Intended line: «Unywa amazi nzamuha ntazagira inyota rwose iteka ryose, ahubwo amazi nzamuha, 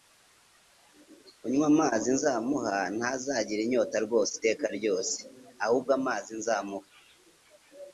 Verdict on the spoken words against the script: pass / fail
pass